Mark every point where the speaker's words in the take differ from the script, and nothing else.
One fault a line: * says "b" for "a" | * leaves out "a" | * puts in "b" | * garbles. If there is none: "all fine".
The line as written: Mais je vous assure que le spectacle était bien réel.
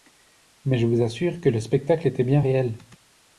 all fine